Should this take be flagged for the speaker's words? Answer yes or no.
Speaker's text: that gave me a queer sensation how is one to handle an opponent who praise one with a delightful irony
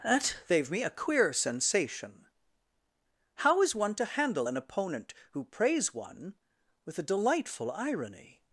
no